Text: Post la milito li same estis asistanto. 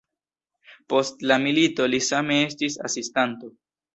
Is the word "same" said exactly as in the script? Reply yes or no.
yes